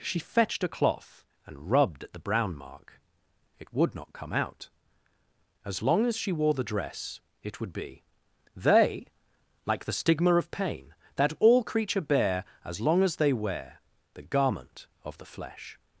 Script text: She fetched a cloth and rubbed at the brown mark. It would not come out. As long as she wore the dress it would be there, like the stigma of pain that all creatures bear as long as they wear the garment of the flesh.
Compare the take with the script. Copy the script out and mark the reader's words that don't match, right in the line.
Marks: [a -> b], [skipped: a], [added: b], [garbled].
She fetched a cloth and rubbed at the brown mark. It would not come out. As long as she wore the dress it would be [there, -> they] like the stigma of pain that all [creatures -> creature] bear as long as they wear the garment of the flesh.